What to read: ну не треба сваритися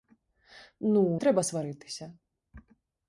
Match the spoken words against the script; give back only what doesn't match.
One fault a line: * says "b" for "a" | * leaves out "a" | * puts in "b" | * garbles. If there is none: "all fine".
* leaves out "не"